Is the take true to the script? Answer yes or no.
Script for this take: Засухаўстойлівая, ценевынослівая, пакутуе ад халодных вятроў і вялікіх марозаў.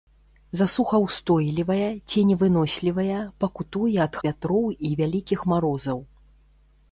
no